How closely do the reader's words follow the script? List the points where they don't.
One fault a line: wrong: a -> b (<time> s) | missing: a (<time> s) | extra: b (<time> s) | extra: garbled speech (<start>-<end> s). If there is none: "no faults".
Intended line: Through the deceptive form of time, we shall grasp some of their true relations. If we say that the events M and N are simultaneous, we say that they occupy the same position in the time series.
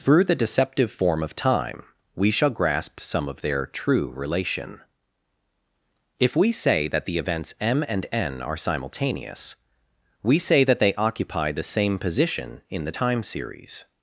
wrong: relations -> relation (4.2 s)